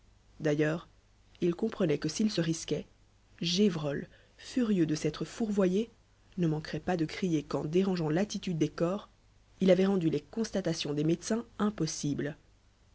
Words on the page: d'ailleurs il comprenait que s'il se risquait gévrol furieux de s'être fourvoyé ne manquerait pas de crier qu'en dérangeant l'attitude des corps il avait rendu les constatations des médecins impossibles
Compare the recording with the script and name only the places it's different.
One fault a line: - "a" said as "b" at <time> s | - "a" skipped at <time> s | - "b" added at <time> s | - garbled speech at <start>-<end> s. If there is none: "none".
none